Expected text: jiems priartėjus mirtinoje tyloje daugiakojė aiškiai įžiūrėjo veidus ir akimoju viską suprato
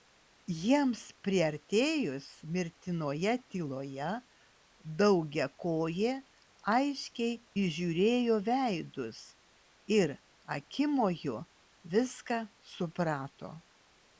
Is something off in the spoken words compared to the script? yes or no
no